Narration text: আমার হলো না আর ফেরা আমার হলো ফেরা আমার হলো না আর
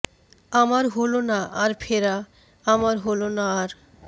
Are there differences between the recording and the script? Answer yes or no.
yes